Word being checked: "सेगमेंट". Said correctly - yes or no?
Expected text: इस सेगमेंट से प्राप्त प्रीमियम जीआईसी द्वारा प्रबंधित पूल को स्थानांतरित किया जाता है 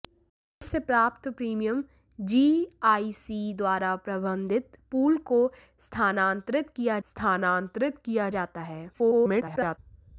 no